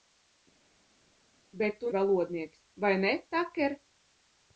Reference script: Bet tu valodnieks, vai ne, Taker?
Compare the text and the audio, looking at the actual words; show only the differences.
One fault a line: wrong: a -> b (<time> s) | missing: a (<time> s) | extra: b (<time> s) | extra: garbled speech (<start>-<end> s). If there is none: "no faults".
no faults